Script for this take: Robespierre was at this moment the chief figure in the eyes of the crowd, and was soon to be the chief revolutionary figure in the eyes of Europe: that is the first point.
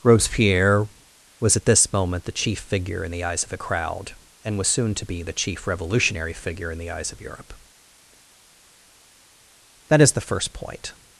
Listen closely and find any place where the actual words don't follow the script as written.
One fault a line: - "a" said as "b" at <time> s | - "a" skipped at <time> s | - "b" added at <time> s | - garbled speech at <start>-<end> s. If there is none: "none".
- "the" said as "a" at 3.5 s